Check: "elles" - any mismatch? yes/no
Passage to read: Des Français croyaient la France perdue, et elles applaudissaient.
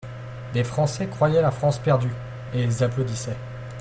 yes